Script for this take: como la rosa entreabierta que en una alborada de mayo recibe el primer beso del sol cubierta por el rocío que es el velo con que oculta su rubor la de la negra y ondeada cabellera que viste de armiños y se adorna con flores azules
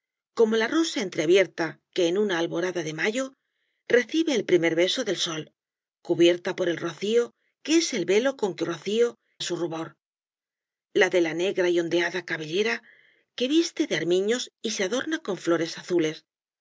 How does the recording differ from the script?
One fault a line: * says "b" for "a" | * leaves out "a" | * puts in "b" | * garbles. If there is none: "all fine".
* says "rocío" for "oculta"